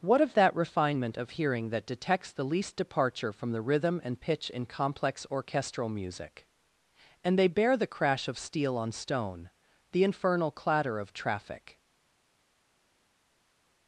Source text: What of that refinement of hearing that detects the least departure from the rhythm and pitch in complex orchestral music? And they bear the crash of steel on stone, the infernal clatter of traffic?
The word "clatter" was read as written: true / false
true